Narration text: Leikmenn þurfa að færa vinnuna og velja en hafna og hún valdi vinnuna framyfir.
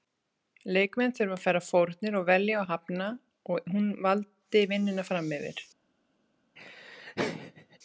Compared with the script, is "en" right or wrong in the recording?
wrong